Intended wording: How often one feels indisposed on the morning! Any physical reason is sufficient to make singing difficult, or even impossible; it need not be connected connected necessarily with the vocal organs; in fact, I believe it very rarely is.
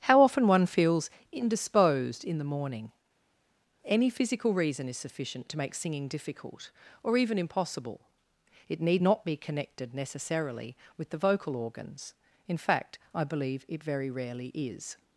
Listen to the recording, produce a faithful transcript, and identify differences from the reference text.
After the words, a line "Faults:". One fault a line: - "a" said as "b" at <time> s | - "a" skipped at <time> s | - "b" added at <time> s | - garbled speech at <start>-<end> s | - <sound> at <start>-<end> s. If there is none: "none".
How often one feels indisposed in the morning! Any physical reason is sufficient to make singing difficult, or even impossible; it need not be connected necessarily with the vocal organs; in fact, I believe it very rarely is.
Faults:
- "on" said as "in" at 2.2 s
- "connected" skipped at 9.9 s